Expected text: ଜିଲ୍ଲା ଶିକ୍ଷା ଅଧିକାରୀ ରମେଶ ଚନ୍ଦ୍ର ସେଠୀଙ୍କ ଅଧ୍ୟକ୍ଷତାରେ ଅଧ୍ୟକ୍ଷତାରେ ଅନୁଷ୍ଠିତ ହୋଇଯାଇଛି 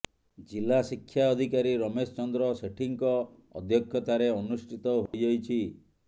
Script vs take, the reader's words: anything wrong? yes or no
yes